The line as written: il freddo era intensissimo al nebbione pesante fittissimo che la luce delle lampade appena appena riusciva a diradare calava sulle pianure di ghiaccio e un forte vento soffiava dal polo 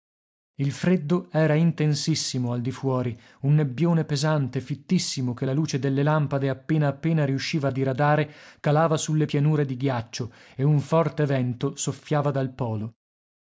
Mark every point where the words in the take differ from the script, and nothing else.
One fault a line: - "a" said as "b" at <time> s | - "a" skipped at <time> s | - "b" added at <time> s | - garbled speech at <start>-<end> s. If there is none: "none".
- "di fuori un" added at 2.6 s